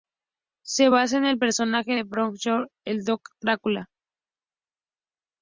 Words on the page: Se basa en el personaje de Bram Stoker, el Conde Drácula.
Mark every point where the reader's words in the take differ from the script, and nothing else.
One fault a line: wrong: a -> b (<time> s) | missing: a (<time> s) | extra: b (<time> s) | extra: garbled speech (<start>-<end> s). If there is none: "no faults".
no faults